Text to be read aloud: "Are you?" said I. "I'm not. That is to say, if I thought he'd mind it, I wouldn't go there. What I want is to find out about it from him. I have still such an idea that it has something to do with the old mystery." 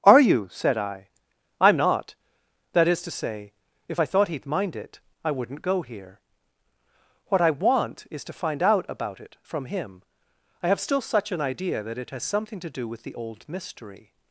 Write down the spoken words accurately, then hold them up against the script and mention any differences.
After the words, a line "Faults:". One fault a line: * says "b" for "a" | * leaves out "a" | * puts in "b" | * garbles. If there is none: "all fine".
"Are you?" said I. "I'm not. That is to say, if I thought he'd mind it, I wouldn't go here. What I want is to find out about it from him. I have still such an idea that it has something to do with the old mystery."
Faults:
* says "here" for "there"